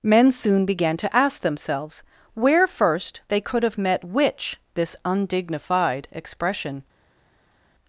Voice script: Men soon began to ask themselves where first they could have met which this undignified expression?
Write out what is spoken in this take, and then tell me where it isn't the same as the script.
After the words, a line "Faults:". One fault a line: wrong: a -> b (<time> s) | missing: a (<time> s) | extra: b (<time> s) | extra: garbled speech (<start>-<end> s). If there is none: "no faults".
Men soon began to ask themselves where first they could have met which this undignified expression?
Faults:
no faults